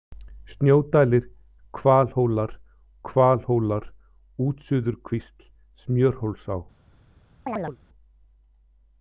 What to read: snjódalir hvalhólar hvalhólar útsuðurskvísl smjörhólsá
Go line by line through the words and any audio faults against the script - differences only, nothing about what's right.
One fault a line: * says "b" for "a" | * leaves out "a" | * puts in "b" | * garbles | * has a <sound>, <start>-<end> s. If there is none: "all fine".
* has a chirp, 7.5-7.8 s